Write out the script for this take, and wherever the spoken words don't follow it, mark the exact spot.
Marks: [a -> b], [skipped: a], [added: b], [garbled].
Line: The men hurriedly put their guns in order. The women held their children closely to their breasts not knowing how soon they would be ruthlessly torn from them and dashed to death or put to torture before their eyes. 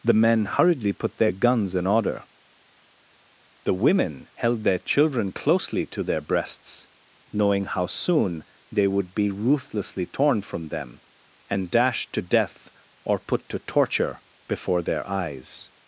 The men hurriedly put their guns in order. The women held their children closely to their breasts [skipped: not] knowing how soon they would be ruthlessly torn from them and dashed to death or put to torture before their eyes.